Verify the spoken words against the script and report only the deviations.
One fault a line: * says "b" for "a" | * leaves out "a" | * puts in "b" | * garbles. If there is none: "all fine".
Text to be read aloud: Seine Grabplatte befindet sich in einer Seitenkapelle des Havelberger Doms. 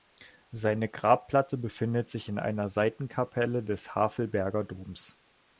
all fine